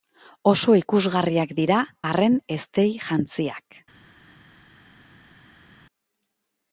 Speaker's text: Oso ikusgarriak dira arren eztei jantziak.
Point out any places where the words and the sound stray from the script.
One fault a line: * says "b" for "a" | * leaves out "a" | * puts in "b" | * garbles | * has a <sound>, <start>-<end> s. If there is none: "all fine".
all fine